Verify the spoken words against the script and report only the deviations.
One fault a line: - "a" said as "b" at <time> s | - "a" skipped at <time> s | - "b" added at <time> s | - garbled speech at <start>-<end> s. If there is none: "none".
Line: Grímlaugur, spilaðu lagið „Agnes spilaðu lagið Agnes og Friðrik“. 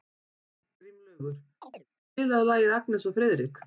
- "spilaðu lagið Agnes" skipped at 3.1 s